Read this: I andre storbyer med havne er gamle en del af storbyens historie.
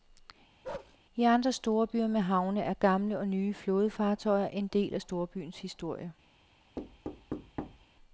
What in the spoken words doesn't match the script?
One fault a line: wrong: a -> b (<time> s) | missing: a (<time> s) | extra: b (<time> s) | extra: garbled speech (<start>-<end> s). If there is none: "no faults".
extra: og nye flådefartøjer (3.2 s)